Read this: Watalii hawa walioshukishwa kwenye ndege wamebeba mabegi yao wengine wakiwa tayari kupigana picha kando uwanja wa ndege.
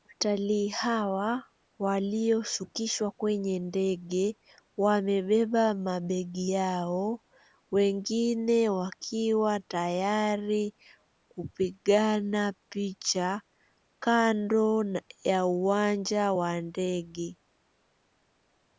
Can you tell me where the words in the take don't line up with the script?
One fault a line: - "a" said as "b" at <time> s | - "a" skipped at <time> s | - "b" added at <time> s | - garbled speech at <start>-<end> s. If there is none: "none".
- "ya" added at 15.2 s